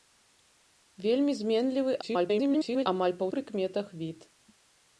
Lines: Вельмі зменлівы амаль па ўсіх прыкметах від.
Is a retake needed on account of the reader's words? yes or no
yes